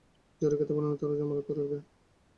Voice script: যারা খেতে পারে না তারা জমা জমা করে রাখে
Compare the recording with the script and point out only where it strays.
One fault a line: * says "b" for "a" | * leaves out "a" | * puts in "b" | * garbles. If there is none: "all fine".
* leaves out "জমা"